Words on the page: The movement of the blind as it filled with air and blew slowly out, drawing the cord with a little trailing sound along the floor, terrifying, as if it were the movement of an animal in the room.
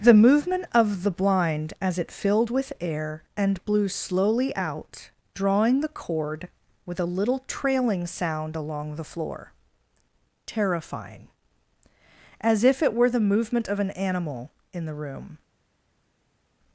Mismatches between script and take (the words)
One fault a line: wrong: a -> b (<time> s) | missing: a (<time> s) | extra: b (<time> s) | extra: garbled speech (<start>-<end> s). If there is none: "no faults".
no faults